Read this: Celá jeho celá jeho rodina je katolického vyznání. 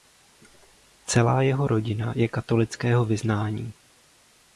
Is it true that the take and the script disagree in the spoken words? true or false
true